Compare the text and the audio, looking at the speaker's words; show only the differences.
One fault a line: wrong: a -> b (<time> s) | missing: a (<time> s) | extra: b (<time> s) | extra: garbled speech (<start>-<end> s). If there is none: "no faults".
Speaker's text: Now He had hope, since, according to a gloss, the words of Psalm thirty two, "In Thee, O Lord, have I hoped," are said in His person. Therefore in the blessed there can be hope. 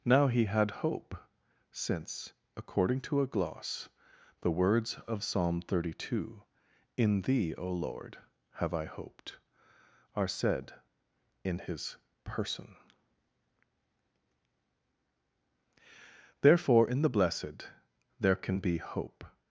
no faults